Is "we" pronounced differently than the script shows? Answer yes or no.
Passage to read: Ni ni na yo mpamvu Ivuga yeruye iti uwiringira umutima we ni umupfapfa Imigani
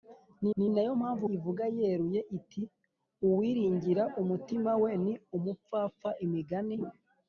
no